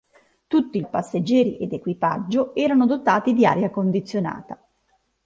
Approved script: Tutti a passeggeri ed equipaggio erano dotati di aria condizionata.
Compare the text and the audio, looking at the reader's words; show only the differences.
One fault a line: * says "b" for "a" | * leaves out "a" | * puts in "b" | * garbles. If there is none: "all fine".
all fine